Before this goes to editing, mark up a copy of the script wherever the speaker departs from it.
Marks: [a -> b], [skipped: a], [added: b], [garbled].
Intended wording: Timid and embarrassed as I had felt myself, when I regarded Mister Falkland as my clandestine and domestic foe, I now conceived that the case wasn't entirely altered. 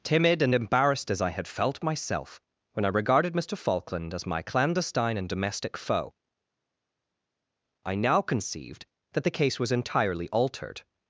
Timid and embarrassed as I had felt myself, when I regarded Mister Falkland as my clandestine and domestic foe, I now conceived that the case [wasn't -> was] entirely altered.